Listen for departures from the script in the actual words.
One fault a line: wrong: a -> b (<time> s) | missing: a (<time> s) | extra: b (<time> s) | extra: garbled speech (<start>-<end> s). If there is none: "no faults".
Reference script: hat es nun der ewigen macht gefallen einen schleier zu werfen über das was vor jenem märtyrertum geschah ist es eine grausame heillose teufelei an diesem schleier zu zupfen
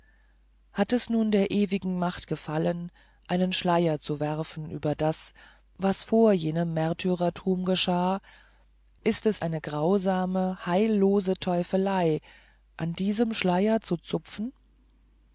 no faults